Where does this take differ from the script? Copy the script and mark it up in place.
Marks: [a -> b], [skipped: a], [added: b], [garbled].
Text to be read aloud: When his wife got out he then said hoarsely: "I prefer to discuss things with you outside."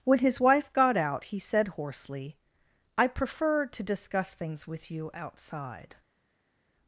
When his wife got out he [skipped: then] said hoarsely: "I prefer to discuss things with you outside."